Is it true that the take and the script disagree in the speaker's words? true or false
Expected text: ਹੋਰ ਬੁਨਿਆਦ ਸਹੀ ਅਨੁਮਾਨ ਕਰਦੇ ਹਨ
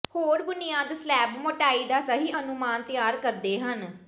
true